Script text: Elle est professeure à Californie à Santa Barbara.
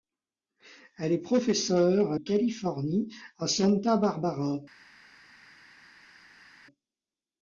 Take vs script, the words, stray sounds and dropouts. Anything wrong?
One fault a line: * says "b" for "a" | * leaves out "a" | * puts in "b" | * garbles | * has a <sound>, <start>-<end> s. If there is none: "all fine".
all fine